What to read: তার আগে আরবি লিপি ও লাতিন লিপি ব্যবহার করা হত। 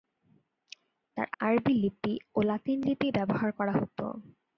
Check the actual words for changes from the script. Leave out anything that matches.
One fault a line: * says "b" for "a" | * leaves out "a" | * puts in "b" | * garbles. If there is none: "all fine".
* leaves out "আগে"